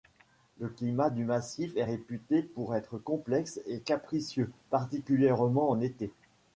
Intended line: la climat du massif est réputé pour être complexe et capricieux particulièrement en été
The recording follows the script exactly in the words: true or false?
false